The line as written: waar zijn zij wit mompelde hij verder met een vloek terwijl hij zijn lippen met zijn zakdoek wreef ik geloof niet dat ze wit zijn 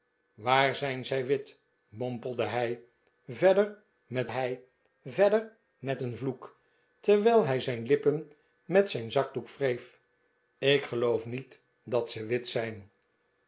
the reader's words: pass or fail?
fail